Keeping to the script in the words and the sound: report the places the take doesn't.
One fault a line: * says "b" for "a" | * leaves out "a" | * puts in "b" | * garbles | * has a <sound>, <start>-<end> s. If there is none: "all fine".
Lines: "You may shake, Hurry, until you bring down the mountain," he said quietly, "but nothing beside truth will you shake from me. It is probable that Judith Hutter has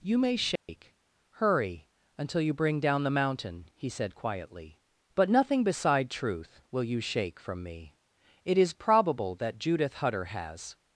* has a dropout, 0.6-0.7 s